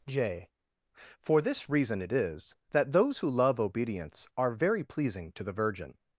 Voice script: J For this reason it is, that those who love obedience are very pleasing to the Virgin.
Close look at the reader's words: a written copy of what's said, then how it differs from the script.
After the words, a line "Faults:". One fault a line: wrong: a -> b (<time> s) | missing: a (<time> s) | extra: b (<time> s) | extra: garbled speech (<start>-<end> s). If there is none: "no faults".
J For this reason it is, that those who love obedience are very pleasing to the Virgin.
Faults:
no faults